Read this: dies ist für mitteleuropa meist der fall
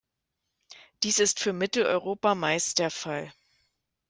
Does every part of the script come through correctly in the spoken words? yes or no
yes